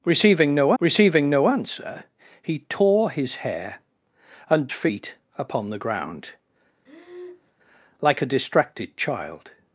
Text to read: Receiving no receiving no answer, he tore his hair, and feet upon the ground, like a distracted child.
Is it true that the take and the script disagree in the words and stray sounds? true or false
true